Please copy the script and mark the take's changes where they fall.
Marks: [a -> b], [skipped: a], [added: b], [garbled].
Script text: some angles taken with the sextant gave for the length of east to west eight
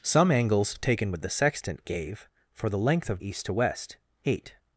some angles taken with the sextant gave for the length of east to west eight